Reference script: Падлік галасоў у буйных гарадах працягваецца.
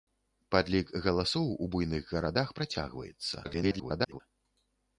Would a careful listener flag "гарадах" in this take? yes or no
no